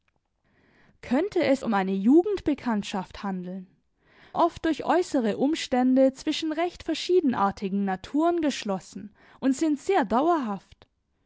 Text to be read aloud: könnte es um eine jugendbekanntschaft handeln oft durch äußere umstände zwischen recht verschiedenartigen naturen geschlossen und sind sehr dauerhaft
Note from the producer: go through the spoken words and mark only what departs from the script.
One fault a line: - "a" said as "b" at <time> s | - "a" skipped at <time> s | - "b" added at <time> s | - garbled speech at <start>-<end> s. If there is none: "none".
none